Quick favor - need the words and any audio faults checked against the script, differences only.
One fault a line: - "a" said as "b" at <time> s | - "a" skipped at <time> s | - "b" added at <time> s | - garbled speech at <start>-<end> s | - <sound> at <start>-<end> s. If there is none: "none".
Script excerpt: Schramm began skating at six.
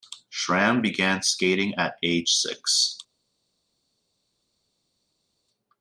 - "age" added at 2.0 s